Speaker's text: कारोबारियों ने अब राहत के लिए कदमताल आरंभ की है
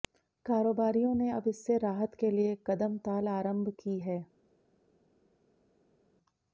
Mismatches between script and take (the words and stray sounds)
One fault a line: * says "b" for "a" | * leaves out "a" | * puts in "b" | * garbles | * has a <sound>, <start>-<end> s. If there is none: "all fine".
* puts in "इससे"